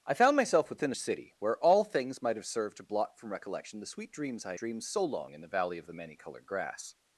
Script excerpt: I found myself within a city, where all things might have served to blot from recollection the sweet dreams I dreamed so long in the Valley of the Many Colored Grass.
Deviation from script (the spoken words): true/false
false